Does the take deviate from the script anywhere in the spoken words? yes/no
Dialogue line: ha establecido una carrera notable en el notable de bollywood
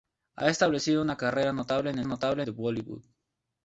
no